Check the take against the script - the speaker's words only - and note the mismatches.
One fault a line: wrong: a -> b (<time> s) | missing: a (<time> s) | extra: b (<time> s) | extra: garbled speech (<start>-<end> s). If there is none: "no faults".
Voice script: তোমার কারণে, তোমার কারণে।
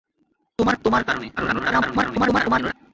missing: কারণে (0.8 s)
extra: garbled speech (1.4-2.7 s)